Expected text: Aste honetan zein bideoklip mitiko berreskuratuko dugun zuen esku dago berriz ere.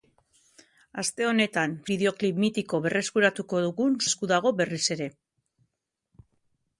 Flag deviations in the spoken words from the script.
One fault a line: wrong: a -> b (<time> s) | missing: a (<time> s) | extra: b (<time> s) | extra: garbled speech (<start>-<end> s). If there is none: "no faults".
missing: zein (1.8 s)
missing: zuen (4.0 s)